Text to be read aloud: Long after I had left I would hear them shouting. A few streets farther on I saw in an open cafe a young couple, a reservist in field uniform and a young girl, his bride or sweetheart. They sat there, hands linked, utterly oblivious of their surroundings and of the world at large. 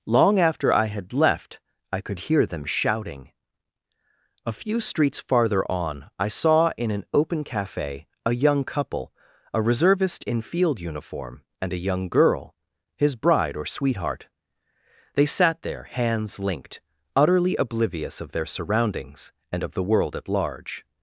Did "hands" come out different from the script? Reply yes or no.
no